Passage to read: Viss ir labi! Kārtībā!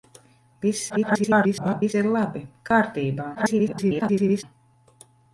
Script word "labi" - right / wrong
right